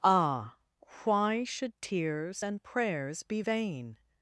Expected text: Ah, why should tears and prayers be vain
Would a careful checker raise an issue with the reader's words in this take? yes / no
no